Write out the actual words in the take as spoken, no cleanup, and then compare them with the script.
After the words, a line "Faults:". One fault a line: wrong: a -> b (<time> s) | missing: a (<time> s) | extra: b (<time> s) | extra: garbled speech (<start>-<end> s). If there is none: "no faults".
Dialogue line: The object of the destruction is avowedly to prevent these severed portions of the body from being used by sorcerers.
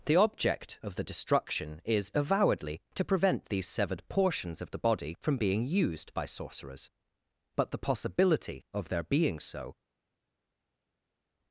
The object of the destruction is avowedly to prevent these severed portions of the body from being used by sorcerers. But the possibility of their being so
Faults:
extra: But the possibility of their being so (7.5 s)